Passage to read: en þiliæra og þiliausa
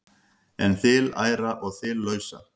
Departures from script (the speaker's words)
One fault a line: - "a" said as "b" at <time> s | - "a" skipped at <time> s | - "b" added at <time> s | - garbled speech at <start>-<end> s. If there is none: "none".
none